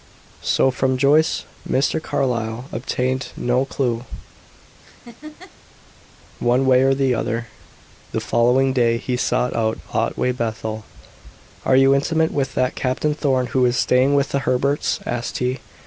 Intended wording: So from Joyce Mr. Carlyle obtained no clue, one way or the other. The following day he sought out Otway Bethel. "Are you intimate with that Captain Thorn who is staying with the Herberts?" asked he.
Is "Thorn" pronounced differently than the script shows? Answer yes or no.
no